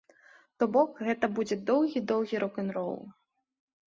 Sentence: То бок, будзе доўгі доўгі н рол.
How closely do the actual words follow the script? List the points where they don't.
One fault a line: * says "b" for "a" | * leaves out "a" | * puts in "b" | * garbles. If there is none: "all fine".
* puts in "гэта"
* puts in "рок"